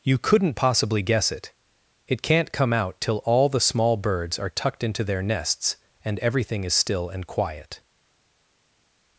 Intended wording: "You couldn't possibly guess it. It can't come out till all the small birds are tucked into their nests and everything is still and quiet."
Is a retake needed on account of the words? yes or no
no